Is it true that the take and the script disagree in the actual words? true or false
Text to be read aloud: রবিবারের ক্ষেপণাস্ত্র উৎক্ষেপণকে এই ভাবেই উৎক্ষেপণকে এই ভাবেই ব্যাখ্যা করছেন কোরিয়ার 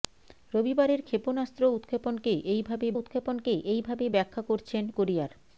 false